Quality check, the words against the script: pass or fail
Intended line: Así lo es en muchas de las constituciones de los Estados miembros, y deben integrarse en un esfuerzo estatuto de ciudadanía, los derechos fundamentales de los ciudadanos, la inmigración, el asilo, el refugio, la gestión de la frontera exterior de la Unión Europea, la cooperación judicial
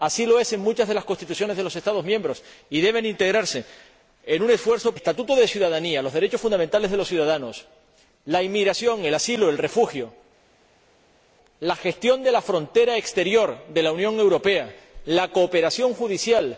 pass